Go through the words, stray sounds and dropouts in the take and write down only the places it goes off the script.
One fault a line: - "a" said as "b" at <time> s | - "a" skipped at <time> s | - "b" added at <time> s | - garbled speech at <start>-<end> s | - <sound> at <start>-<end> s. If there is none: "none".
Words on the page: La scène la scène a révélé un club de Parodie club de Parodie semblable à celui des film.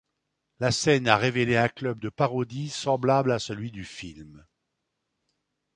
- "la scène" skipped at 1.1 s
- "club de Parodie" skipped at 2.7 s
- "des" said as "du" at 3.7 s